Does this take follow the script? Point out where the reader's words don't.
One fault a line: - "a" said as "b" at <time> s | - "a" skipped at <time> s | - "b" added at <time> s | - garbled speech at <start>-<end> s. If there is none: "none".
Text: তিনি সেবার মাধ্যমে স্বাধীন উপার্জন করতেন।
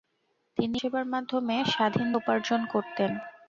none